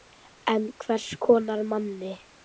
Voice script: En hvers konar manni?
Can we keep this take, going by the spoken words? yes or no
yes